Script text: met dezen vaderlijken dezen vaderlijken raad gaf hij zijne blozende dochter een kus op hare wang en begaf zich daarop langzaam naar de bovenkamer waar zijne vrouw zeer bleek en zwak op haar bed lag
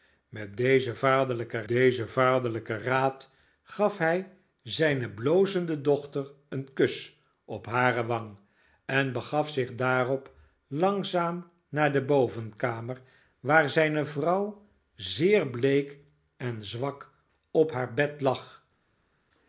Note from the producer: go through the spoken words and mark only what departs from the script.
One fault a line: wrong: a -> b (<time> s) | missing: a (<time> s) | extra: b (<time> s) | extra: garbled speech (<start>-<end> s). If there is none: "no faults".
no faults